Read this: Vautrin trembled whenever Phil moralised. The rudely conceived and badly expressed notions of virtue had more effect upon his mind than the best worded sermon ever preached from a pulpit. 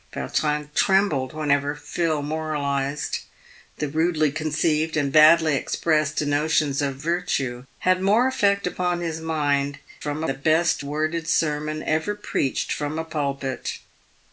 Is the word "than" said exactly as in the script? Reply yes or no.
no